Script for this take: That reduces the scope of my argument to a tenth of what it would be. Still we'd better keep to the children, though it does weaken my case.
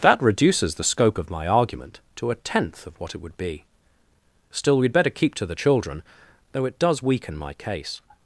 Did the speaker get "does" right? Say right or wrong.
right